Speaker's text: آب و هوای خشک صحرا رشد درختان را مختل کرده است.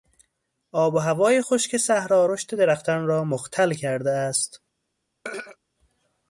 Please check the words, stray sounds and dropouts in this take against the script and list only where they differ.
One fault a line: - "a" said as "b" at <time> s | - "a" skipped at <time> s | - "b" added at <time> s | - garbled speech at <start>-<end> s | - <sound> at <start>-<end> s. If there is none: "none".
- throat clearing at 5.2-5.6 s